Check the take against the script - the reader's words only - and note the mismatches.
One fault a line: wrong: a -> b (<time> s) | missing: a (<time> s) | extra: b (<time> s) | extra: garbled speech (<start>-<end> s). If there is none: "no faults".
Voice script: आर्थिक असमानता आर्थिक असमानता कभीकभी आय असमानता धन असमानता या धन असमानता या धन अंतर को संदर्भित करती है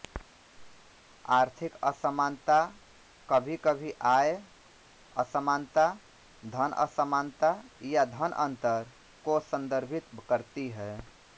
missing: आर्थिक असमानता (2.5 s)
missing: असमानता या धन (8.3 s)